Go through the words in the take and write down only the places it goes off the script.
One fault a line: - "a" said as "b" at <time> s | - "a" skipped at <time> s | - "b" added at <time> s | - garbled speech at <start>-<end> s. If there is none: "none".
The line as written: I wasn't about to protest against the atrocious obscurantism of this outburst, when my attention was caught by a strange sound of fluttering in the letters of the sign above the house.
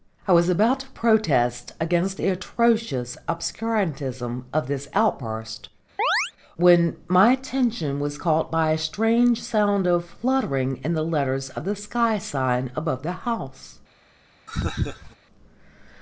- "wasn't" said as "was" at 0.3 s
- "sky" added at 11.8 s